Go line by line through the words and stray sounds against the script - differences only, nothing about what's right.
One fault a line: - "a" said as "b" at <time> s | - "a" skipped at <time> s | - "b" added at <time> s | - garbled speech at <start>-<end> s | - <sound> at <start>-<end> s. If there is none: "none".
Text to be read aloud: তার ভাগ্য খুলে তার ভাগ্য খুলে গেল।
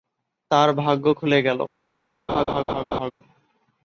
- "তার ভাগ্য খুলে" skipped at 1.4 s
- laugh at 2.3-3.1 s